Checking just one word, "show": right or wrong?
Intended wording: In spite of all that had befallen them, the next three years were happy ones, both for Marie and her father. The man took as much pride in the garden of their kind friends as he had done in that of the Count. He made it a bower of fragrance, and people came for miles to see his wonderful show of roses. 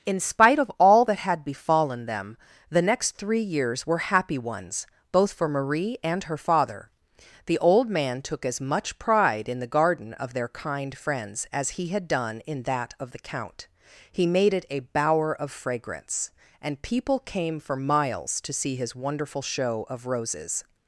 right